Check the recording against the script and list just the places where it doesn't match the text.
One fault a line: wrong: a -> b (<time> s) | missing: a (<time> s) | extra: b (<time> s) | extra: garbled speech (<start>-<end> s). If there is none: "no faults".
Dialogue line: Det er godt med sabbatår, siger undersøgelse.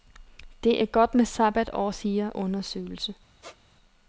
no faults